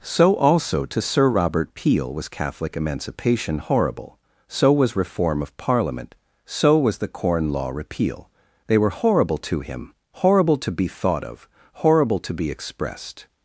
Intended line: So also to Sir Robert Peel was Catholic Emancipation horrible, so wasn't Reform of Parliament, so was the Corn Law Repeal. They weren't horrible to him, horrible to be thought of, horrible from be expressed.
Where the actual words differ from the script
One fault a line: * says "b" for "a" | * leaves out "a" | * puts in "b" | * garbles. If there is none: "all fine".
* says "was" for "wasn't"
* says "were" for "weren't"
* says "to" for "from"